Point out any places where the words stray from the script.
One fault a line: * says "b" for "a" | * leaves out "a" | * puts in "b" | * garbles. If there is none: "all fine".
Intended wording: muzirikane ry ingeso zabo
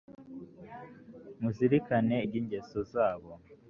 all fine